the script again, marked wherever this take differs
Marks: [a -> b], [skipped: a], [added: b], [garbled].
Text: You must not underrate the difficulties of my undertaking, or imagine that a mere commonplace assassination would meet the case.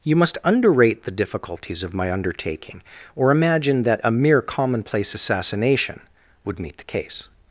You must [skipped: not] underrate the difficulties of my undertaking, or imagine that a mere commonplace assassination would meet the case.